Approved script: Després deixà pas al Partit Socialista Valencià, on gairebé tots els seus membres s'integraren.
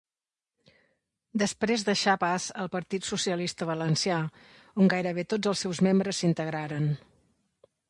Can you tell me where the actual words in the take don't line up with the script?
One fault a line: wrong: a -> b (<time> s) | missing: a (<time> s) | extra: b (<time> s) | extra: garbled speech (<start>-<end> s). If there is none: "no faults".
no faults